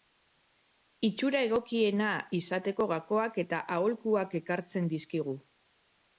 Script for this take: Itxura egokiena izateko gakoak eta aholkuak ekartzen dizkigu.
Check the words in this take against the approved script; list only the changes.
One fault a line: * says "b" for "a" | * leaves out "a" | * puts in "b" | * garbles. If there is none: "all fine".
all fine